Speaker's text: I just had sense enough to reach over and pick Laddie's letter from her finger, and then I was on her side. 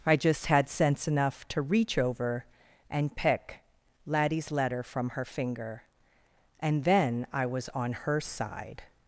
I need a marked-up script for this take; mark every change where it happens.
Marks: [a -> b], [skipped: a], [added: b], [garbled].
I just had sense enough to reach over and pick Laddie's letter from her finger, and then I was on her side.